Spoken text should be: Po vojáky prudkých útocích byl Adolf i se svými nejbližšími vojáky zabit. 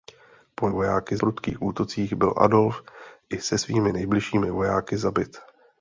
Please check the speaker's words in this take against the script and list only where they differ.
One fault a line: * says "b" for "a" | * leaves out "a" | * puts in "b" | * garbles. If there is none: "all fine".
all fine